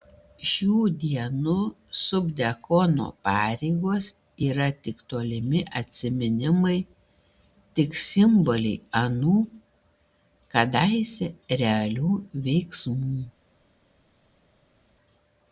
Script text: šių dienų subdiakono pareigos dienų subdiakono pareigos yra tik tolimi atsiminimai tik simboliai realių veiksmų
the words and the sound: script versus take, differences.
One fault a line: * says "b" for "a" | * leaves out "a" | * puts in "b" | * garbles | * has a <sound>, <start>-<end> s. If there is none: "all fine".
* leaves out "dienų subdiakono pareigos"
* puts in "anų kadaise"